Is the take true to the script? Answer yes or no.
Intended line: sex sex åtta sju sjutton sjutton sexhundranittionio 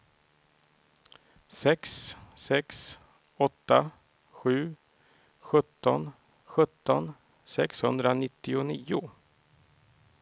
yes